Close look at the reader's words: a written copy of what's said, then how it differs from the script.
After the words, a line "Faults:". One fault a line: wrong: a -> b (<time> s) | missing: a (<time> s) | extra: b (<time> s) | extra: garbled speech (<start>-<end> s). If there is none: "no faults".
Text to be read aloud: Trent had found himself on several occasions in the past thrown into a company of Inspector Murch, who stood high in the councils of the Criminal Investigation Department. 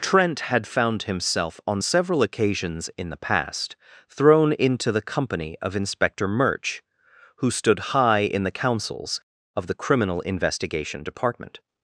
Trent had found himself on several occasions in the past thrown into the company of Inspector Murch, who stood high in the councils of the Criminal Investigation Department.
Faults:
wrong: a -> the (4.9 s)